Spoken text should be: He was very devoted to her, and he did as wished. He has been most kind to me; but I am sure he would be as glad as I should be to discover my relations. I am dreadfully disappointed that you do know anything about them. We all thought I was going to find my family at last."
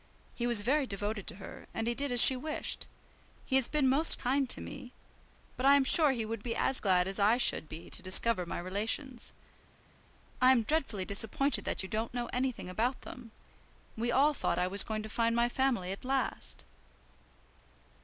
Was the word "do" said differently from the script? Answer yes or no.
yes